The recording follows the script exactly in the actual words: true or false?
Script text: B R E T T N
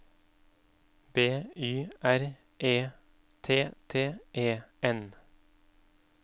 false